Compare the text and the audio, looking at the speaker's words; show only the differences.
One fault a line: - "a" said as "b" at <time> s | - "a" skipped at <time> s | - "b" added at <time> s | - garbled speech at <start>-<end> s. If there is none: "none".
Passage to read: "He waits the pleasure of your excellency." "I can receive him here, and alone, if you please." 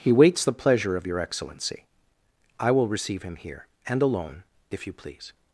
- "can" said as "will" at 2.7 s